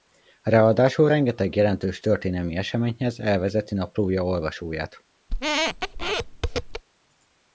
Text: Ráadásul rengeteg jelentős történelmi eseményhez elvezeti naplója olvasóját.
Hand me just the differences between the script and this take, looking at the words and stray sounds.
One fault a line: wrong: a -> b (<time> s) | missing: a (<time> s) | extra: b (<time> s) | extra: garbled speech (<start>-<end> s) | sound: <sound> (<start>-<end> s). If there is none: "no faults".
sound: squeak (5.3-6.8 s)